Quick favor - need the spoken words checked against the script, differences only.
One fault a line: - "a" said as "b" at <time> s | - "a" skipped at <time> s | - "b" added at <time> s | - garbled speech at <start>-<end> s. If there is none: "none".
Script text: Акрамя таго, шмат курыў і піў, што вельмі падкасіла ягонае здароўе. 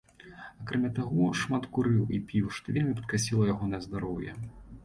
none